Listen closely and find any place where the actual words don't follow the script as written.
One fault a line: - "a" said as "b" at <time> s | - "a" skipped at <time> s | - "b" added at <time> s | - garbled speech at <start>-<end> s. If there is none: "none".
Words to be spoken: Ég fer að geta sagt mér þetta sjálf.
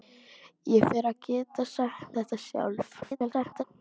- "mér" skipped at 2.2 s
- garbled speech at 3.0-3.6 s